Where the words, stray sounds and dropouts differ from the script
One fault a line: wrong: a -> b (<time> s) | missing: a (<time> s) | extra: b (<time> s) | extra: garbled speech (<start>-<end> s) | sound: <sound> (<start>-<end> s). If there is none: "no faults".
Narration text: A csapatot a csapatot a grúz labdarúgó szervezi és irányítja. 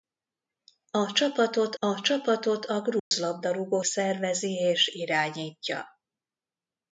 sound: dropout (3.0-3.1 s)